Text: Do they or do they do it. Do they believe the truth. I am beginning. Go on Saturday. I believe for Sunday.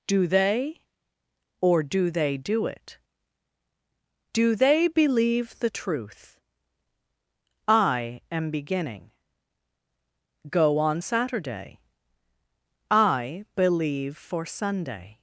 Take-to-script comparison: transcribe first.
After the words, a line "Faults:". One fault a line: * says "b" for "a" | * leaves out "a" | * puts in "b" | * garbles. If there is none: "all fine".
Do they or do they do it. Do they believe the truth. I am beginning. Go on Saturday. I believe for Sunday.
Faults:
all fine